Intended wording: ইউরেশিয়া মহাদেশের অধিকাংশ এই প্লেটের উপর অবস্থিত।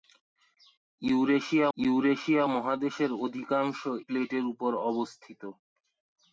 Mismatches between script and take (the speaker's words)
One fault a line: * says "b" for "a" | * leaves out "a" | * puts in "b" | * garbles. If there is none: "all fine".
* puts in "ইউরেশিয়া"
* leaves out "এই"